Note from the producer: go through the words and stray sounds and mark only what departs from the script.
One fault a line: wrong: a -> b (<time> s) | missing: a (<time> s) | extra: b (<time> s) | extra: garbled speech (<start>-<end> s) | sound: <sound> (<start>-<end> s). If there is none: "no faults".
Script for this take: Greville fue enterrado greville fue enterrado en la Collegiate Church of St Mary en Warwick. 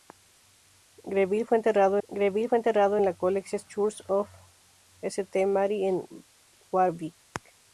no faults